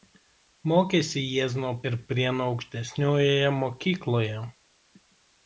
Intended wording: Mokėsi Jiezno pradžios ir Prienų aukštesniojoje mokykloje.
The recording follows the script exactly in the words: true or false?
false